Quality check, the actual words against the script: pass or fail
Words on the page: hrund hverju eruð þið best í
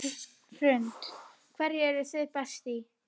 pass